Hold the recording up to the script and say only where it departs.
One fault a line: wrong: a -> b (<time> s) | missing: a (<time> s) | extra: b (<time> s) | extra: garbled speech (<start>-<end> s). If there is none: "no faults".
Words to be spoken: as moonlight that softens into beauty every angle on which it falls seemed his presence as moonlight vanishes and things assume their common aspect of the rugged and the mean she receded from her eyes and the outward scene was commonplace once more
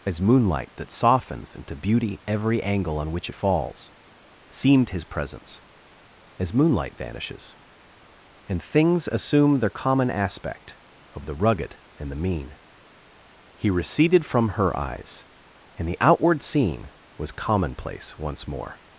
wrong: she -> he (13.6 s)